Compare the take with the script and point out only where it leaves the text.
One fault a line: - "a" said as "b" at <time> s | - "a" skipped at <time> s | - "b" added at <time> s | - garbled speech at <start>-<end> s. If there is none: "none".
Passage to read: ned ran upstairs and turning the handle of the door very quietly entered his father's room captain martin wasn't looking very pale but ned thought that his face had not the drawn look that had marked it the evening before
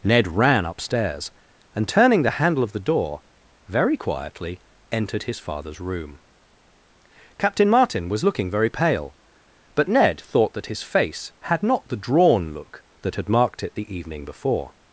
- "wasn't" said as "was" at 8.1 s